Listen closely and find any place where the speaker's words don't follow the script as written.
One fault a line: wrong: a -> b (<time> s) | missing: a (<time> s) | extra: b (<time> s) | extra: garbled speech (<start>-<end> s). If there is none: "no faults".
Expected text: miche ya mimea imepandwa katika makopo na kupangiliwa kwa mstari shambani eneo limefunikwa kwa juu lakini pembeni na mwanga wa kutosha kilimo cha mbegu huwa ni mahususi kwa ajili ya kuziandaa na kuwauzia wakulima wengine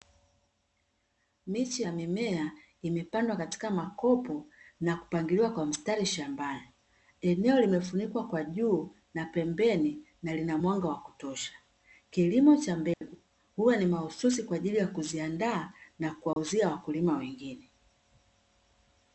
wrong: lakini -> na (9.1 s)
extra: lina (10.3 s)